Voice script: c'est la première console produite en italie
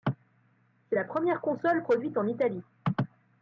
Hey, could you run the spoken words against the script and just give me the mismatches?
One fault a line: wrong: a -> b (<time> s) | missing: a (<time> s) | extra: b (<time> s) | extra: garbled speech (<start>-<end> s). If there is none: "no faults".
no faults